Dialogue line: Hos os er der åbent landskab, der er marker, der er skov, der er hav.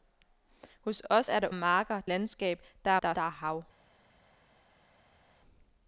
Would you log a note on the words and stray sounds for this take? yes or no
yes